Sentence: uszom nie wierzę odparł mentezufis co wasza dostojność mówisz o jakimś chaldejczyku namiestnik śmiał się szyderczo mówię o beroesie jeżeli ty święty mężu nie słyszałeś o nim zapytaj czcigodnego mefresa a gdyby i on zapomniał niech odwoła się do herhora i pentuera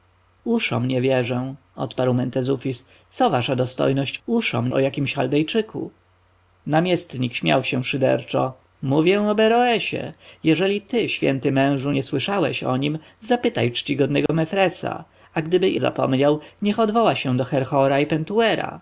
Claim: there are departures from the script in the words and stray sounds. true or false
true